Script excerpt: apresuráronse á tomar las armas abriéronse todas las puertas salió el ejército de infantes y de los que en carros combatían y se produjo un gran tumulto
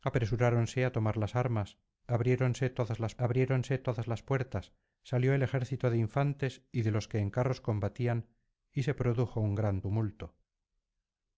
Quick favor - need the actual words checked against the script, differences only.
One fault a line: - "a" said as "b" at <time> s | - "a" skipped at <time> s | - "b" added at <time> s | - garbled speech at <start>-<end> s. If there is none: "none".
- "abriéronse todas las" added at 3.2 s